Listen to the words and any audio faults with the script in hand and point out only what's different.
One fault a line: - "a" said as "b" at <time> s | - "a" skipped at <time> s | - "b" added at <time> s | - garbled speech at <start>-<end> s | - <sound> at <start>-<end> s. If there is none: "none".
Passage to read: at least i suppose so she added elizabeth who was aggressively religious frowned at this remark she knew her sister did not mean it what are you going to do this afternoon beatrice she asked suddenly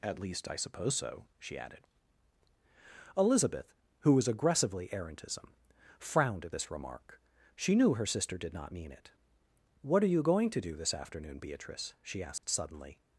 - "religious" said as "errantism" at 4.9 s
- dropout at 12.4-12.4 s